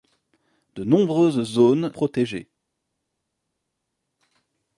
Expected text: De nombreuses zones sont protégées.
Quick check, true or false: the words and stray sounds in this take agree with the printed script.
false